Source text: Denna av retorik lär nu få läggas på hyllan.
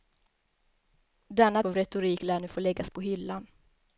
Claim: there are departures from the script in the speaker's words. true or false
false